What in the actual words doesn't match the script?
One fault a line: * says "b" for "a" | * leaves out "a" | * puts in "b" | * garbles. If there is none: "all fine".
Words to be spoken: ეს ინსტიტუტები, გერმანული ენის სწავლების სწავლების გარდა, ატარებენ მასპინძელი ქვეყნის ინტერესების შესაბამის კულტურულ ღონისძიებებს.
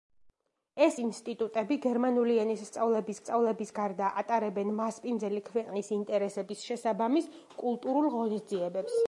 all fine